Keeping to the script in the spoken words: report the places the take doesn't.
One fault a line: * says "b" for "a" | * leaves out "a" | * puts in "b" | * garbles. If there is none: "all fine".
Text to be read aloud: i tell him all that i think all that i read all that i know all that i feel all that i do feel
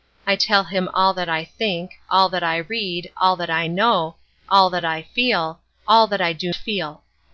all fine